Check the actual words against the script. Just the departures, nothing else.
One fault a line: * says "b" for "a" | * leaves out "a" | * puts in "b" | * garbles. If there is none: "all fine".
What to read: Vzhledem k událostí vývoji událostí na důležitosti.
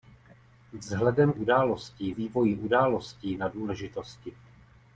all fine